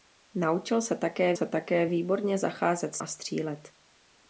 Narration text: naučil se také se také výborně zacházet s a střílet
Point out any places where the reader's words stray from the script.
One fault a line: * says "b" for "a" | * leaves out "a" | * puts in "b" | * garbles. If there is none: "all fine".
all fine